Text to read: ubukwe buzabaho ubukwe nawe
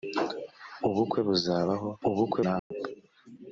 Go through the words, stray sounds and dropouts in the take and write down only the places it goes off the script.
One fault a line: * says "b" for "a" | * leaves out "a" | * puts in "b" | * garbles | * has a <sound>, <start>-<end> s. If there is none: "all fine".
* has a dropout, 2.6-2.7 s